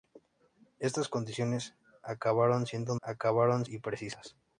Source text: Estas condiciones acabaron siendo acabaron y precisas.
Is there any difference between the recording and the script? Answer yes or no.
no